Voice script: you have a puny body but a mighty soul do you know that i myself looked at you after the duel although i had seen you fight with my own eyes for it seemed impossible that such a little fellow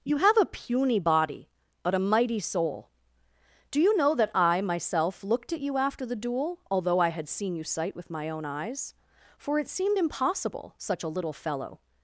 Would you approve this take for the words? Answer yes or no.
no